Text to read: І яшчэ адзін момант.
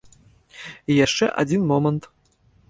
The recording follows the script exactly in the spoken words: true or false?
true